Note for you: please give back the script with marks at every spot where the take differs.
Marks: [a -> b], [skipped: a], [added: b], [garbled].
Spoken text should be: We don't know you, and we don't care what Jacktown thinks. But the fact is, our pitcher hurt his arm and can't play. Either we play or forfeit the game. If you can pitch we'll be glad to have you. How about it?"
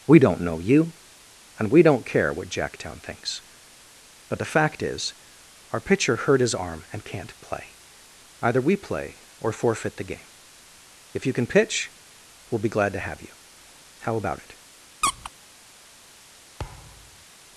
We don't know you, and we don't care what Jacktown thinks. But the fact is, our pitcher hurt his arm and can't play. Either we play or forfeit the game. If you can pitch we'll be glad to have you. How about it?"